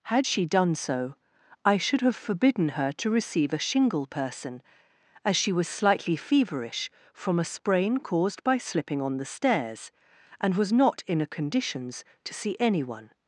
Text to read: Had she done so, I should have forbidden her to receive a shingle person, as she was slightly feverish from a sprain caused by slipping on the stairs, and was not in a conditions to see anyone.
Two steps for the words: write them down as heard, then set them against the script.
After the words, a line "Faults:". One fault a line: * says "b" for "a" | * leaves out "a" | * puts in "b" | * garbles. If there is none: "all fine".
Had she done so, I should have forbidden her to receive a shingle person, as she was slightly feverish from a sprain caused by slipping on the stairs, and was not in a conditions to see anyone.
Faults:
all fine